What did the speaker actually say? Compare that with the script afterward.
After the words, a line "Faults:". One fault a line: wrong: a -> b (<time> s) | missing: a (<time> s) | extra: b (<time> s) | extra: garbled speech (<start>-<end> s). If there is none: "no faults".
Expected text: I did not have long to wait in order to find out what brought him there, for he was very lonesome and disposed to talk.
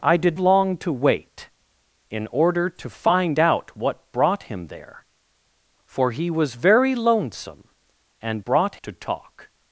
I did long to wait in order to find out what brought him there, for he was very lonesome and brought to talk.
Faults:
missing: not have (0.4 s)
wrong: disposed -> brought (8.4 s)